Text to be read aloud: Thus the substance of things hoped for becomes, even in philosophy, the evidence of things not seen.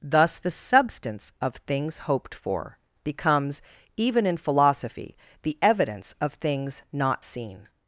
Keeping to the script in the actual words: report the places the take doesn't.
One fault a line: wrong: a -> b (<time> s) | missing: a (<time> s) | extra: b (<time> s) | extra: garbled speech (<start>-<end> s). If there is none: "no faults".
no faults